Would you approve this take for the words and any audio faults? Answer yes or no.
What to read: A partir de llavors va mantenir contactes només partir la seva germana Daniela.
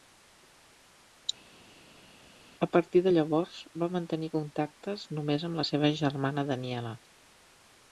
no